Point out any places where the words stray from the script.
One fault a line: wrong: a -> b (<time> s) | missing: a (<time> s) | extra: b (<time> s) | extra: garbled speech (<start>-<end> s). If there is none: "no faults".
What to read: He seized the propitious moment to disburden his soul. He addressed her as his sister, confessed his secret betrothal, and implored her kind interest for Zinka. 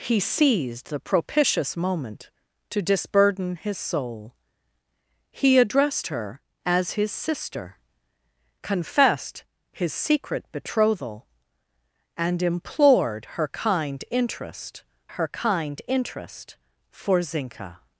extra: her kind interest (15.2 s)